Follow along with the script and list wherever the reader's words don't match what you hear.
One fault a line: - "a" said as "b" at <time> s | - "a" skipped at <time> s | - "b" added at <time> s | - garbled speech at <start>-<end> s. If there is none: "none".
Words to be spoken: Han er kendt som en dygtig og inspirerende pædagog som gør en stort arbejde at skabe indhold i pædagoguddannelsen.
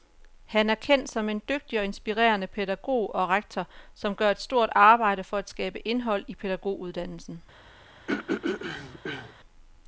- "og rektor" added at 3.1 s
- "en" said as "et" at 4.3 s
- "for" added at 5.2 s